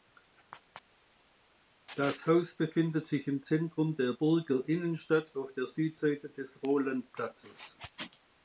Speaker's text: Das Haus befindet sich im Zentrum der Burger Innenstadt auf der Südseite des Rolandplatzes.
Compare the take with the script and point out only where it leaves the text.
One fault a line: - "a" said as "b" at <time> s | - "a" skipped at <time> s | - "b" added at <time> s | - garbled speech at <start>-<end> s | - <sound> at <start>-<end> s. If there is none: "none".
none